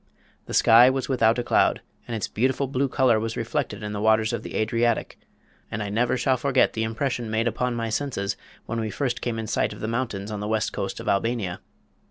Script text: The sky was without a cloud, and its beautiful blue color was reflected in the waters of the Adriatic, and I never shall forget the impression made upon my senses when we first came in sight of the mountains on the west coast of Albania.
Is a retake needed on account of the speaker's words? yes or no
no